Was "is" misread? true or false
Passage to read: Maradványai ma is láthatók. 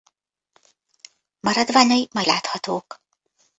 true